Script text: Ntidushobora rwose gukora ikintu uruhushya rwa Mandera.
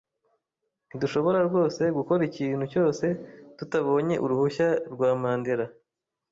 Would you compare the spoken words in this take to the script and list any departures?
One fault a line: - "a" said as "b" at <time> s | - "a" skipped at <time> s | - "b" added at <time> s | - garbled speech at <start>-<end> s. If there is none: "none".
- "cyose tutabonye" added at 2.7 s